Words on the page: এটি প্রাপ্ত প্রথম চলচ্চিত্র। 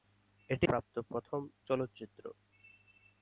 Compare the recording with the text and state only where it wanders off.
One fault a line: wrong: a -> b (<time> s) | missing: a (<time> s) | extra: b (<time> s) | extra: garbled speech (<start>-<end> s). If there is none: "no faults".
no faults